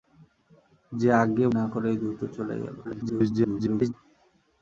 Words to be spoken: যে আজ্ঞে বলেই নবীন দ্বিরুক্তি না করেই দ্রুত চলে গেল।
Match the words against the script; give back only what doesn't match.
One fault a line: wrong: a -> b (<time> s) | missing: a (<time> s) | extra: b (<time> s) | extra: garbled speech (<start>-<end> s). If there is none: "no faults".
missing: বলেই নবীন দ্বিরুক্তি (1.5 s)
extra: garbled speech (2.8-3.9 s)